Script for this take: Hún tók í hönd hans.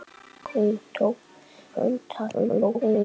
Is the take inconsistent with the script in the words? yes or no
yes